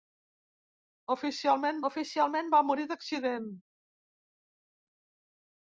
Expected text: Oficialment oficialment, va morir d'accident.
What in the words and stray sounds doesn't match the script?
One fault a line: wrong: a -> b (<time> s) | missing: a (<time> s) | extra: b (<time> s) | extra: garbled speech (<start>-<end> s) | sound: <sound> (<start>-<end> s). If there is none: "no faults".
no faults